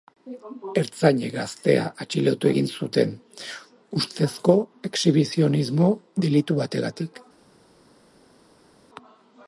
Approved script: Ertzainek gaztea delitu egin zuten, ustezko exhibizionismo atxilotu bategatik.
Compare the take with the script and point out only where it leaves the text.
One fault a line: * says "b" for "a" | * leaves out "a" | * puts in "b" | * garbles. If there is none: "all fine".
* says "atxilotu" for "delitu"
* says "delitu" for "atxilotu"